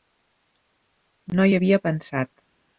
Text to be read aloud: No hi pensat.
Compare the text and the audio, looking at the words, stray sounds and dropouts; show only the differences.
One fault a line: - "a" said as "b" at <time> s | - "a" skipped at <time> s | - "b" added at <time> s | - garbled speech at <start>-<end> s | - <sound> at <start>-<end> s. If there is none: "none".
- "havia" added at 1.6 s